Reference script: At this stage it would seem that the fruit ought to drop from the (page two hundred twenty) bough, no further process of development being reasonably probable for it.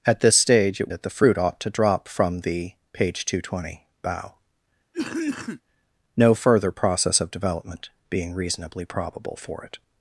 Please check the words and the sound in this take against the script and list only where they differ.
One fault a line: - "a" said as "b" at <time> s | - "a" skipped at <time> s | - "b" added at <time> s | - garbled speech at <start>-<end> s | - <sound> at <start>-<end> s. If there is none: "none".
- "would seem" skipped at 0.9 s
- cough at 4.9-5.6 s